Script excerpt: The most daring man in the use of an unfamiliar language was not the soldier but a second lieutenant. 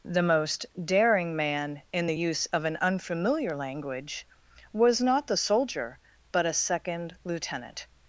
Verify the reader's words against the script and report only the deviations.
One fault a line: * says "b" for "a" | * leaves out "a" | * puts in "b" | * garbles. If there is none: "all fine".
all fine